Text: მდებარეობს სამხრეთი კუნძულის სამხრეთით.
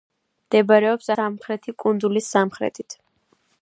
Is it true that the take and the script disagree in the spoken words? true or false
false